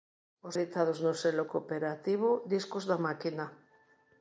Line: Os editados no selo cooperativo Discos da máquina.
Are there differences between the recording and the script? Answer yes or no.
no